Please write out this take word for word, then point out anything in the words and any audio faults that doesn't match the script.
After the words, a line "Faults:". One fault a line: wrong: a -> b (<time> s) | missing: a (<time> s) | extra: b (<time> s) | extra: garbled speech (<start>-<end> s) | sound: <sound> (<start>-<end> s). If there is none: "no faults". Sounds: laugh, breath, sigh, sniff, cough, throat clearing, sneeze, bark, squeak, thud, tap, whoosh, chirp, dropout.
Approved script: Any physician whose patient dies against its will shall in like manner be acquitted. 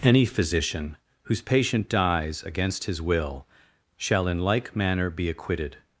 Any physician whose patient dies against his will shall in like manner be acquitted.
Faults:
wrong: its -> his (2.9 s)